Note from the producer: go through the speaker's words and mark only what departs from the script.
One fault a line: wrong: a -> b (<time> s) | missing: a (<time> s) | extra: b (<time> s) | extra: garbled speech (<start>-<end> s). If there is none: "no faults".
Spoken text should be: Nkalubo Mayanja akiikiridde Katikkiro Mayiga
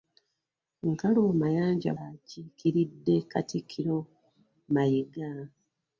no faults